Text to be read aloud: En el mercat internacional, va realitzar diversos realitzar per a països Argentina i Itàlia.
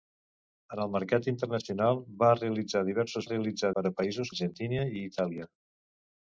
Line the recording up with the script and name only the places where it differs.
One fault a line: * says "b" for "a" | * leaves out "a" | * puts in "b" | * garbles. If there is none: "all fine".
all fine